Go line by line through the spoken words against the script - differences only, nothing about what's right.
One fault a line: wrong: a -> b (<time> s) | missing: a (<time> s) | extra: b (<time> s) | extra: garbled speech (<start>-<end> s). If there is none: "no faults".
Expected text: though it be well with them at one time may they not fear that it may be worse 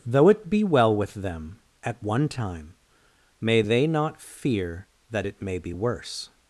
no faults